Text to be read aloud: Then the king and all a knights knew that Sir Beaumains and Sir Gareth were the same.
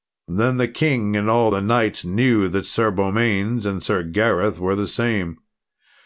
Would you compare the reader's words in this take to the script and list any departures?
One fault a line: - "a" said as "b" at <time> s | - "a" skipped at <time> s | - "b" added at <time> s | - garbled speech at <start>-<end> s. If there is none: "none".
- "a" said as "the" at 1.5 s